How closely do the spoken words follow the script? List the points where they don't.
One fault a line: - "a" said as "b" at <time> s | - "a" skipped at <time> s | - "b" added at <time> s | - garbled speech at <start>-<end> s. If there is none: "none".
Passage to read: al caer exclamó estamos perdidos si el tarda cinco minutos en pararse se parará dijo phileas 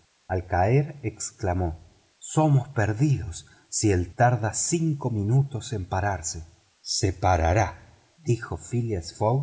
none